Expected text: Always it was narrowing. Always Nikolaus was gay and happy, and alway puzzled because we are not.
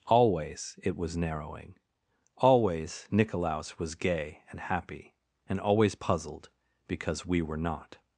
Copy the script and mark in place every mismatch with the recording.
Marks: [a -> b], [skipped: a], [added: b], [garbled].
Always it was narrowing. Always Nikolaus was gay and happy, and [alway -> always] puzzled because we [are -> were] not.